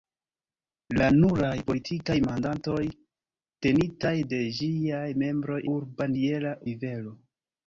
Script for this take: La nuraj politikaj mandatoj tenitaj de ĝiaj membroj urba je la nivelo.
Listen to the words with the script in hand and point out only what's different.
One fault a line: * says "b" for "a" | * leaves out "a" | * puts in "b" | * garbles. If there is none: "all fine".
all fine